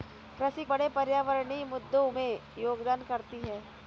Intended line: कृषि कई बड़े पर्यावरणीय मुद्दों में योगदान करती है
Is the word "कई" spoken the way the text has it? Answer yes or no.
no